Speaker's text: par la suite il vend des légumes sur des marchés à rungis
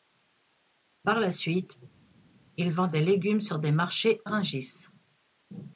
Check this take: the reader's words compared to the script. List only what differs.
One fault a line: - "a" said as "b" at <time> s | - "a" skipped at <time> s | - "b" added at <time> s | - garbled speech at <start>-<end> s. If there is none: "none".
- "à" skipped at 4.2 s